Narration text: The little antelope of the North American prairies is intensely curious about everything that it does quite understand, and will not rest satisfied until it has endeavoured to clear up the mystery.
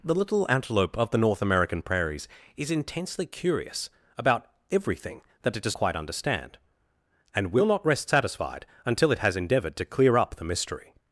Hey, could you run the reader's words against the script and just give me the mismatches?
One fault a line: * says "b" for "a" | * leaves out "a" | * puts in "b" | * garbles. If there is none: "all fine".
all fine